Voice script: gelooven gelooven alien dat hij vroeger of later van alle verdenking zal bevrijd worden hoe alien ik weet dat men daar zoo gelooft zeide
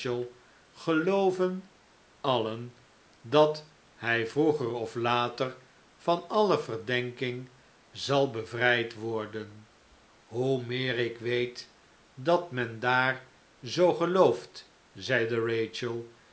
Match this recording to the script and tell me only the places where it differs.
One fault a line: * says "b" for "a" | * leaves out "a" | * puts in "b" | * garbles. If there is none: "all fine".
* leaves out "gelooven"
* says "meer" for "alien"